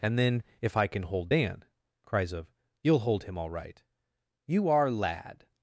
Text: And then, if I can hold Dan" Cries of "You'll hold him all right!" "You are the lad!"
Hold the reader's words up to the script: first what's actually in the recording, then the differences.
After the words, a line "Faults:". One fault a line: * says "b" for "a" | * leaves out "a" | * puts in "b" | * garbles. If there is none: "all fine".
And then, if I can hold Dan" Cries of "You'll hold him all right!" "You are lad!"
Faults:
* leaves out "the"